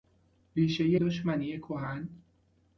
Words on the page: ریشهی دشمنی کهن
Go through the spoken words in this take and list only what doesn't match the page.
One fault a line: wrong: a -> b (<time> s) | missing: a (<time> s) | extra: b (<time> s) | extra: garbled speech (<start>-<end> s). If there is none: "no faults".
no faults